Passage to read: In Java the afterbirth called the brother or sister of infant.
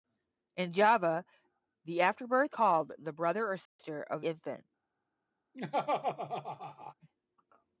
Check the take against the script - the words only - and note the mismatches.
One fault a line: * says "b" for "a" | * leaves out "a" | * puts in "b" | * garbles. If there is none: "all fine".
all fine